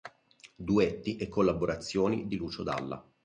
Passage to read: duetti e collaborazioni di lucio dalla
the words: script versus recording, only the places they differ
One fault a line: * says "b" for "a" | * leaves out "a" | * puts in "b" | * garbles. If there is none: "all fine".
all fine